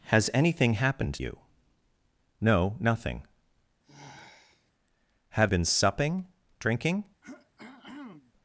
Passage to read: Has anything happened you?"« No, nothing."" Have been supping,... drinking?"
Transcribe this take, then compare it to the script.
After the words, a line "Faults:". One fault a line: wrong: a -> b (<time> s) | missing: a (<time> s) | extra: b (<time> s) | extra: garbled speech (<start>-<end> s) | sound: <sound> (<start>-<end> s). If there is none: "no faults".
Has anything happened you?"« No, nothing."" Have been supping,... drinking?"
Faults:
sound: sigh (3.8-4.7 s)
sound: throat clearing (7.2-8.3 s)